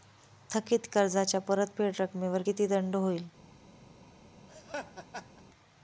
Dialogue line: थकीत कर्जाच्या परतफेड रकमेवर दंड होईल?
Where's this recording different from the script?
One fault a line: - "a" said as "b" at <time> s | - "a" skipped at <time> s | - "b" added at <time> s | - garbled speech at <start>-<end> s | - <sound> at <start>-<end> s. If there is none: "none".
- "किती" added at 2.4 s
- laugh at 4.5-5.4 s